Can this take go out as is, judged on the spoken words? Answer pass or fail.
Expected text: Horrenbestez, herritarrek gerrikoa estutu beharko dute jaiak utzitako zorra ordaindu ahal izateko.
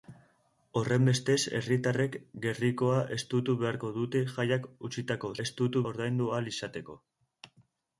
fail